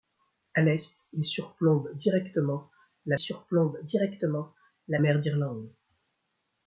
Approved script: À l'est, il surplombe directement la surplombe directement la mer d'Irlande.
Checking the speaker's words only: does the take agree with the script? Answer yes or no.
yes